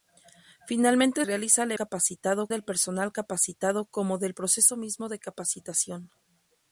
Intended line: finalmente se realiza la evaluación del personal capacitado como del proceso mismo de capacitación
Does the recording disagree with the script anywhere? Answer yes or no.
yes